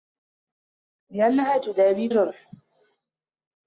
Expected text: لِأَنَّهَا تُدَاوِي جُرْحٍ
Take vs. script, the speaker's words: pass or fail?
pass